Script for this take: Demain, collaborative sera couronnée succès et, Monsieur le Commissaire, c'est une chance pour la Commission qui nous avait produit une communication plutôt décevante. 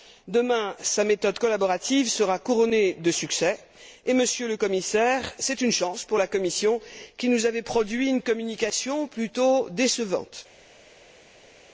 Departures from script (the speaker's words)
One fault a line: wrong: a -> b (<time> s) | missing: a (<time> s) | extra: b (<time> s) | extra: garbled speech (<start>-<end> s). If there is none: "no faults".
extra: sa méthode (0.8 s)
extra: de (2.9 s)